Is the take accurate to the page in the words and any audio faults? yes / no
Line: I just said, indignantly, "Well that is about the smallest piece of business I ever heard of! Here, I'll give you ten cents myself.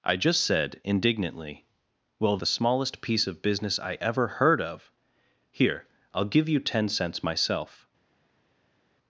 no